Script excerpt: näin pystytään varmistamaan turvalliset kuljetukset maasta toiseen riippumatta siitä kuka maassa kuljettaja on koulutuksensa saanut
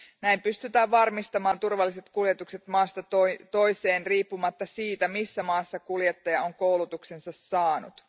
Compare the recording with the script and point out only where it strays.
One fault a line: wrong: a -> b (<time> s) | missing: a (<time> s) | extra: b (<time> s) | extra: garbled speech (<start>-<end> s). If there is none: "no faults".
wrong: kuka -> missä (5.1 s)